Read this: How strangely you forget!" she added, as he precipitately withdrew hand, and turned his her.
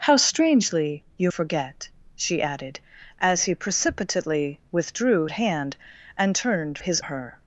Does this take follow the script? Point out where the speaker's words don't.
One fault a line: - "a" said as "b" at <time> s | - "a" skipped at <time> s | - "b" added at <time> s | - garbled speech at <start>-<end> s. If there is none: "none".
none